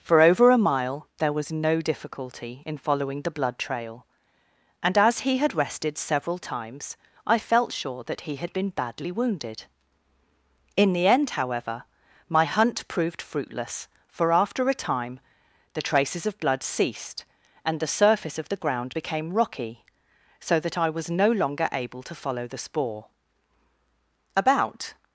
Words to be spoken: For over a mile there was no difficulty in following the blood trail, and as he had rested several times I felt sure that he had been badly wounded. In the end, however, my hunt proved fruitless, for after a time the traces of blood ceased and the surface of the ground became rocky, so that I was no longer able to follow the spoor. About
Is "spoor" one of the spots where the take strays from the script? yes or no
no